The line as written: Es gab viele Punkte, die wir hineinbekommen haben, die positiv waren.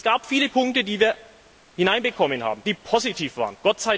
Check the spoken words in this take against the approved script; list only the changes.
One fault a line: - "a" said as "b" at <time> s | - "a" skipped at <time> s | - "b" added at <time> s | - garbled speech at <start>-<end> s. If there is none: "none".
none